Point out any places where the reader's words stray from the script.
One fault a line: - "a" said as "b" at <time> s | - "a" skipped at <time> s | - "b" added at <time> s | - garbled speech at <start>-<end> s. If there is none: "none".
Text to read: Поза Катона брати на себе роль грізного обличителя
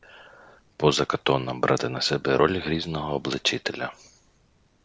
none